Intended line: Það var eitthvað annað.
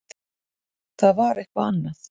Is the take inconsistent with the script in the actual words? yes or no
no